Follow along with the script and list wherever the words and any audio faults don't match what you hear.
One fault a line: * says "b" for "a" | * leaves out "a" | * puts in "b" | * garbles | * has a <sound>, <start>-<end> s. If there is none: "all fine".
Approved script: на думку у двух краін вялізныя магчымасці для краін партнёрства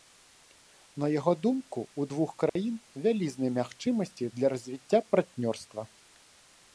* puts in "яго"
* has a dropout, 2.5-2.6 s
* says "развіцця" for "краін"